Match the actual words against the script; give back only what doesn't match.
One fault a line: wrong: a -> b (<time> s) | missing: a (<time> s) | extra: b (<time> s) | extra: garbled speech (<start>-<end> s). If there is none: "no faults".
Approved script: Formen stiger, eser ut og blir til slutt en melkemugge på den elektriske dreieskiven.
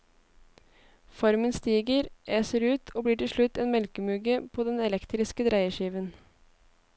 no faults